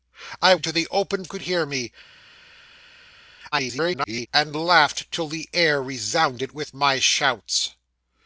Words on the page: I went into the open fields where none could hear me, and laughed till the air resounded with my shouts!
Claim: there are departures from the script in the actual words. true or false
true